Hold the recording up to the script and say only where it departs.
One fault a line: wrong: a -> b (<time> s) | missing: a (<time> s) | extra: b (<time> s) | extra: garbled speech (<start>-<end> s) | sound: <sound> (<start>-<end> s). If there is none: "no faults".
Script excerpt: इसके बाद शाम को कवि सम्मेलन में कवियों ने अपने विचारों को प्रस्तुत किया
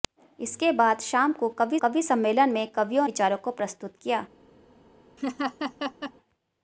extra: कवि (1.8 s)
missing: ने अपने (3.1 s)
sound: laugh (5.2-6.1 s)